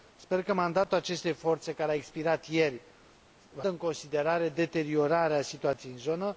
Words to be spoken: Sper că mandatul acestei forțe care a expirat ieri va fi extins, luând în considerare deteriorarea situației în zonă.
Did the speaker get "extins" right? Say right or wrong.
wrong